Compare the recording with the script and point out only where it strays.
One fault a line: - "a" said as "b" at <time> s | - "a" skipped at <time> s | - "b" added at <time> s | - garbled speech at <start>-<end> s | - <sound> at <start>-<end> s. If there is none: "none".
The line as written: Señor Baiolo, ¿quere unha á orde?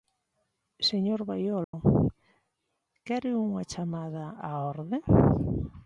- dropout at 1.6-1.7 s
- "chamada" added at 3.7 s